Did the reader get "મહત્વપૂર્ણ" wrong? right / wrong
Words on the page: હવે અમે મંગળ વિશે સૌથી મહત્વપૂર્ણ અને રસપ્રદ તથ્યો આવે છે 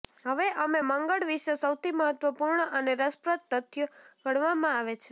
right